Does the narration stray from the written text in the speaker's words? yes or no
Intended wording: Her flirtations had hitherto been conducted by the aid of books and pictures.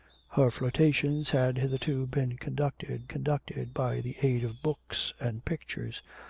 yes